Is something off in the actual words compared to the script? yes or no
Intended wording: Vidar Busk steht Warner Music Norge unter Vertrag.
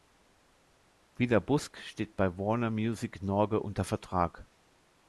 yes